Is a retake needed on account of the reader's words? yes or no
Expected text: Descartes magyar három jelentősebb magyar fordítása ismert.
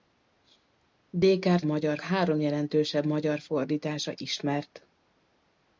no